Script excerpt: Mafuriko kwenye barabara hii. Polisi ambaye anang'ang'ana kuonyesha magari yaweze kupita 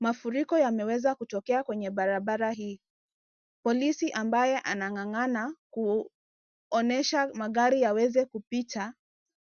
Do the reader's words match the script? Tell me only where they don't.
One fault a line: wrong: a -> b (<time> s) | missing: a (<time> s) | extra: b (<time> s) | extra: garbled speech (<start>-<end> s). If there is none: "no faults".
extra: yameweza kutokea (0.6 s)